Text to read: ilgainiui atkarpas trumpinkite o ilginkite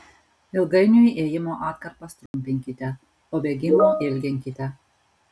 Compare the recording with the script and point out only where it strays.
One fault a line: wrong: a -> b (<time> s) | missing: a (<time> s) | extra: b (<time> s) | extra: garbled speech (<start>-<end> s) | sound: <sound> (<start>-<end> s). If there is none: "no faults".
extra: ėjimo (1.2 s)
sound: dropout (2.3-2.3 s)
extra: bėgimo (3.4 s)